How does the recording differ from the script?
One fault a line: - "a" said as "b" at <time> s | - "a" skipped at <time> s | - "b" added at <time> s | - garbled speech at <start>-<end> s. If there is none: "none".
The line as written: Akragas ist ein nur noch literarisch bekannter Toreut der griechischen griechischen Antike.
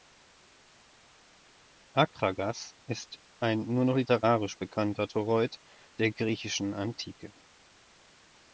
- "griechischen" skipped at 6.7 s